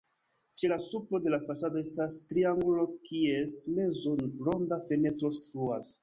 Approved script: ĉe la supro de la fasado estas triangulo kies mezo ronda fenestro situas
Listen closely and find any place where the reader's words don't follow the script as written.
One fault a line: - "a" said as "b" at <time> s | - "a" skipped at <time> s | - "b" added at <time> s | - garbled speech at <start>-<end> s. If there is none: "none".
none